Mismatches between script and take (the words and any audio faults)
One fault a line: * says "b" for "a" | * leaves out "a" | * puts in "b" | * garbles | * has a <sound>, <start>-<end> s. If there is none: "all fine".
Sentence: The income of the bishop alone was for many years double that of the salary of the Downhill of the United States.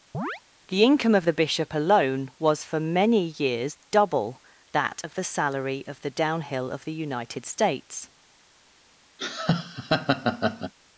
* has a chirp, 0.1-0.4 s
* has a laugh, 9.2-10.7 s